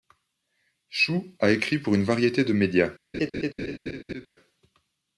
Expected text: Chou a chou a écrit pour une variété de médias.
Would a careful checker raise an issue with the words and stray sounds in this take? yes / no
yes